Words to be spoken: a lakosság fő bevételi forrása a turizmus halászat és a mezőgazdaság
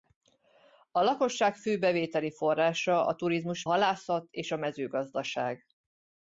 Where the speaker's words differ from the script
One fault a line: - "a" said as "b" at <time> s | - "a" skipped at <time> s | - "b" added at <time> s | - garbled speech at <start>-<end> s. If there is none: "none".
none